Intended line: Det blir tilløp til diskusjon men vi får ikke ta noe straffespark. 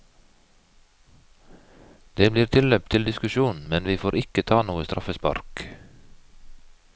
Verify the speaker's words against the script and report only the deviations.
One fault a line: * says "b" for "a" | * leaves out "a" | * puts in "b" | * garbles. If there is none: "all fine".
all fine